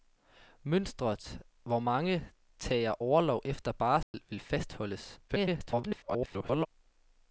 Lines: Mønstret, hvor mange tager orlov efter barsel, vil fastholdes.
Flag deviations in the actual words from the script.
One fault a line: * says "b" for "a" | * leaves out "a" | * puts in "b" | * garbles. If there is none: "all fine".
* garbles